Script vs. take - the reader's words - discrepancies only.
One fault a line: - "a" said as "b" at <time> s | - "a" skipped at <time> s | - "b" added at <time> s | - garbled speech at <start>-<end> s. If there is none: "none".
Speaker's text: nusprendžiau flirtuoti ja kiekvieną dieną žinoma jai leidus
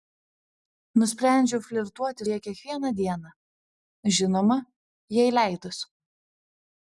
none